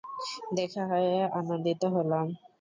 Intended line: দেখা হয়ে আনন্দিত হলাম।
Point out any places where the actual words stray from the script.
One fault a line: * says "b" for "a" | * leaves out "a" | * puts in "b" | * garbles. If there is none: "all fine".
all fine